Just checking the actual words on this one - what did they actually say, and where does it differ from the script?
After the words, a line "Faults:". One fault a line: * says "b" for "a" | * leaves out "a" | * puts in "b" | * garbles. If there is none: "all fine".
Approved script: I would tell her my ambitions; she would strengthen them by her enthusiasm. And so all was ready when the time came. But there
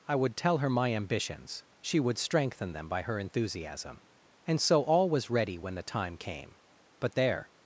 I would tell her my ambitions; she would strengthen them by her enthusiasm. And so all was ready when the time came. But there
Faults:
all fine